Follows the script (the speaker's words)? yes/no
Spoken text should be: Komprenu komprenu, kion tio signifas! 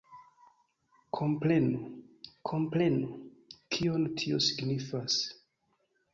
yes